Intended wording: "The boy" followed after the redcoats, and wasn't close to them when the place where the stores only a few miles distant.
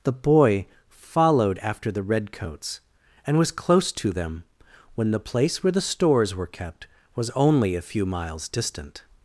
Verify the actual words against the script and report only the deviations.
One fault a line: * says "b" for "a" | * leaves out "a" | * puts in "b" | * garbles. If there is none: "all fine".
* says "was" for "wasn't"
* puts in "were kept was"